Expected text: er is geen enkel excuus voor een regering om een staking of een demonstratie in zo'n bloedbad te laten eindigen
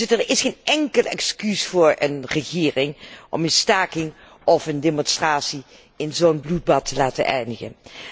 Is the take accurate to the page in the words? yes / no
yes